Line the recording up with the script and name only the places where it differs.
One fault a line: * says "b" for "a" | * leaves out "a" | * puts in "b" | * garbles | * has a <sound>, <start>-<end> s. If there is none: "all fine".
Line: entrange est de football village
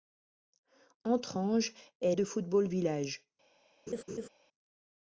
* has a laugh, 3.9-4.3 s